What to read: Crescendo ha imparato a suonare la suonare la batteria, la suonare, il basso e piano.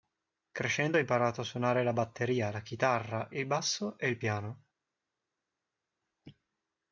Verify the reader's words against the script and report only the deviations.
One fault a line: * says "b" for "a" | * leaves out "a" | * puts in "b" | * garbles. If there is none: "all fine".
* leaves out "suonare la"
* says "chitarra" for "suonare"
* puts in "il"